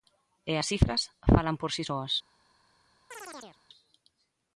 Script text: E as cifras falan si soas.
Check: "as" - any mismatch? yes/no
no